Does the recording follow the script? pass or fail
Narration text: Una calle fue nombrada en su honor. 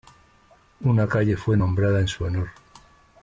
pass